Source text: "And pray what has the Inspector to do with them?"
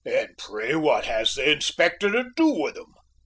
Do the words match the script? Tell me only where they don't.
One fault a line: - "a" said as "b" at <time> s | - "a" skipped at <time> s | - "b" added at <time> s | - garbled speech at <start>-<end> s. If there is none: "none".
none